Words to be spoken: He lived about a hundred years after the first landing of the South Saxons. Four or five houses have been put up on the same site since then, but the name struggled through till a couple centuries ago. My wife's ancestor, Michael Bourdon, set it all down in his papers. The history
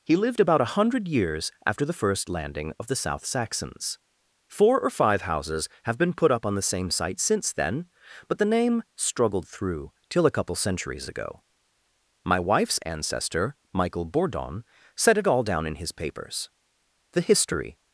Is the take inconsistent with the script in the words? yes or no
no